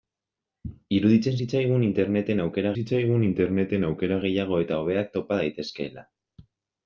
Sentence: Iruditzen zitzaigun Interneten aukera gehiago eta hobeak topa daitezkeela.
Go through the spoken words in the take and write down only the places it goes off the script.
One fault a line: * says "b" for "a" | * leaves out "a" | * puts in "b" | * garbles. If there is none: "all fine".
* puts in "zitzaigun Interneten aukera"